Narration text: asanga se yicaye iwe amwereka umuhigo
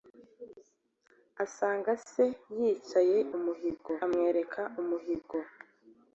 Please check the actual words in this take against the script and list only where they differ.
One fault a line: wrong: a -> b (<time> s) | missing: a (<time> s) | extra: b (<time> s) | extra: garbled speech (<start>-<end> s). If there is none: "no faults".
wrong: iwe -> umuhigo (3.4 s)